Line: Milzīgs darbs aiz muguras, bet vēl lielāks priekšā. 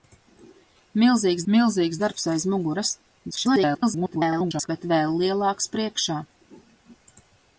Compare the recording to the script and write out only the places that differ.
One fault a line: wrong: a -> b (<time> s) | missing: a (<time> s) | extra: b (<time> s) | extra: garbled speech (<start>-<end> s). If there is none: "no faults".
extra: milzīgs (1.5 s)
extra: garbled speech (3.3-4.7 s)